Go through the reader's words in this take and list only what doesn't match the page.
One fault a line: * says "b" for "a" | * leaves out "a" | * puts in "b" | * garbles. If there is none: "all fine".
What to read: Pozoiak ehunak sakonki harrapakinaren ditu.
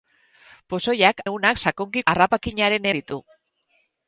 all fine